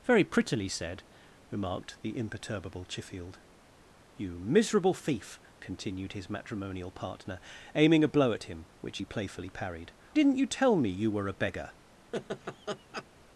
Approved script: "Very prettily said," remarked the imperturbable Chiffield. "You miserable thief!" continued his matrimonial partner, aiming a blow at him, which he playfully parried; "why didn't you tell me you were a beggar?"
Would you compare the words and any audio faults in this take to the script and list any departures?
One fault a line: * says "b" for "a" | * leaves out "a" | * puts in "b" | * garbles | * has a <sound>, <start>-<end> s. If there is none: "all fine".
* leaves out "why"
* has a laugh, 12.1-13.1 s